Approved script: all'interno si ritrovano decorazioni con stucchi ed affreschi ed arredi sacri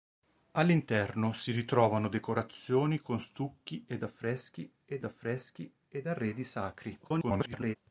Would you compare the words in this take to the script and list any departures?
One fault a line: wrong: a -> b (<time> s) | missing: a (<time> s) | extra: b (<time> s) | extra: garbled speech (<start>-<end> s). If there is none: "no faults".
extra: affreschi ed (5.0 s)
extra: garbled speech (7.0-7.8 s)